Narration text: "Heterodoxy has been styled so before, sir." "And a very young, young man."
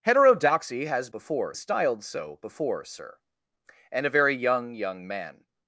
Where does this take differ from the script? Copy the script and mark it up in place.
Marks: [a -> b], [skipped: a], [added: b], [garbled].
"Heterodoxy has [been -> before] styled so before, sir." "And a very young, young man."